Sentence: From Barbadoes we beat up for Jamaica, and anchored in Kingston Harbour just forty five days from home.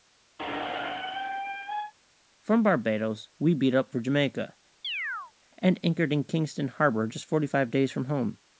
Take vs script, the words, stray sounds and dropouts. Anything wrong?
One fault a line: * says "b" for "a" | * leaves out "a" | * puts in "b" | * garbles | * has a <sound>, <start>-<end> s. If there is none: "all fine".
* has a squeak, 0.4-1.9 s
* has a chirp, 4.8-5.3 s